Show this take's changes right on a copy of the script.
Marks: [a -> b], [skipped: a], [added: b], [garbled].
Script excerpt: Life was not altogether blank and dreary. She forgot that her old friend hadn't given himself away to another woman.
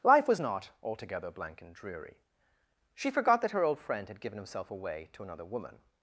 Life was not altogether blank and dreary. She forgot that her old friend [hadn't -> had] given himself away to another woman.